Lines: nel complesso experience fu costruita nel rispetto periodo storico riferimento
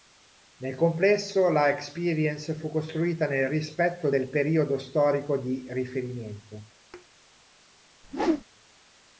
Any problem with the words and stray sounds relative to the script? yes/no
yes